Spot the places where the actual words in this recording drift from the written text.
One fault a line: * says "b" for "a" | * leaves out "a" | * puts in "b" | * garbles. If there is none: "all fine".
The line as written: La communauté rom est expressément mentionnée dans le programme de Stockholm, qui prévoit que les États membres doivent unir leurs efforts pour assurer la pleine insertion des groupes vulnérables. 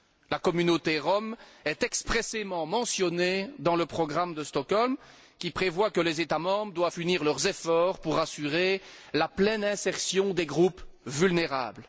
all fine